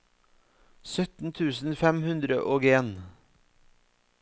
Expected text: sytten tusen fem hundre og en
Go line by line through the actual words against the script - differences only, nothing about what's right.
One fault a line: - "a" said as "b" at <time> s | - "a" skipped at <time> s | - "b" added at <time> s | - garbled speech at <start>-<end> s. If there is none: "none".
none